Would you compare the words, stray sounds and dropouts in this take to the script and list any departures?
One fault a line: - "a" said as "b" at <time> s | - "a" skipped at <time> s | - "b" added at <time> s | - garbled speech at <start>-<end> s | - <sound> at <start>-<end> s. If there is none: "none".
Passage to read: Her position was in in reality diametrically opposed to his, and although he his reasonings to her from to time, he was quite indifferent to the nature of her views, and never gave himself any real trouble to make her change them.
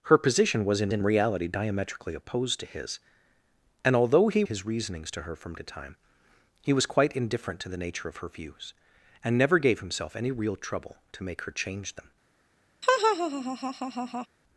- laugh at 12.8-14.3 s